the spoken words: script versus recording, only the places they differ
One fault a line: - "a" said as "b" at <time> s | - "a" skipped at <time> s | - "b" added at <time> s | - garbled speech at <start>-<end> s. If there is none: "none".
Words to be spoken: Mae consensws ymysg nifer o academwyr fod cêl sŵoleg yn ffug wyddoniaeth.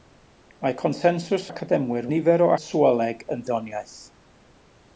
- "ymysg" said as "academwyr" at 1.5 s
- "academwyr fod cêl" skipped at 2.5 s
- "ffug" skipped at 3.5 s